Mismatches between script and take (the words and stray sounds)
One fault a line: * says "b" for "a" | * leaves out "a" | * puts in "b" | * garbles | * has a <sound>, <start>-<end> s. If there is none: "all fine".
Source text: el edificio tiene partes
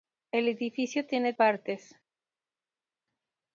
all fine